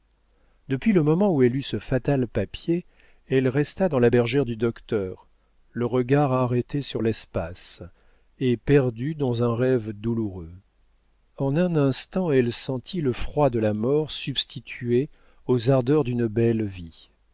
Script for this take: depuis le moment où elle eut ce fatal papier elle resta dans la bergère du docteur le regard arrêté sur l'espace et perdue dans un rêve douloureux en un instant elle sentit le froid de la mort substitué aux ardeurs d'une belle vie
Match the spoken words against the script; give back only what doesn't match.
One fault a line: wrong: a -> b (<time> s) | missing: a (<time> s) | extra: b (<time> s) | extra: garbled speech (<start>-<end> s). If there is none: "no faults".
no faults